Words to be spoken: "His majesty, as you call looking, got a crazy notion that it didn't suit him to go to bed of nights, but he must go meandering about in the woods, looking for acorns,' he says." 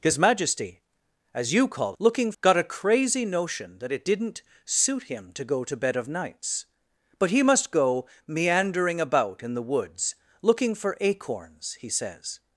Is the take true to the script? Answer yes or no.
yes